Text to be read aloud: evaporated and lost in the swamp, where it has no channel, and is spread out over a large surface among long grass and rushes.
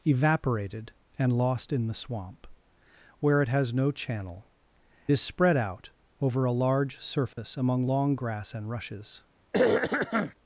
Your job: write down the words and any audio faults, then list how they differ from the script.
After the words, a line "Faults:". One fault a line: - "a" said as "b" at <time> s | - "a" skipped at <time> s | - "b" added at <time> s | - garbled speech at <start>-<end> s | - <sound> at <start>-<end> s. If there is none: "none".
evaporated and lost in the swamp, where it has no channel, is spread out over a large surface among long grass and rushes.
Faults:
- "and" skipped at 4.5 s
- dropout at 7.3-7.4 s
- throat clearing at 9.5-10.3 s